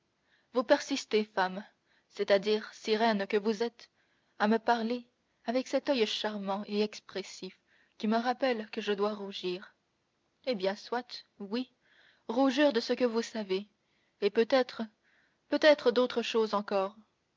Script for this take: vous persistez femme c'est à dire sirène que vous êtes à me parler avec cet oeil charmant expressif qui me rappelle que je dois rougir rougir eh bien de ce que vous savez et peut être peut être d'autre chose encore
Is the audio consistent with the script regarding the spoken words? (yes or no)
no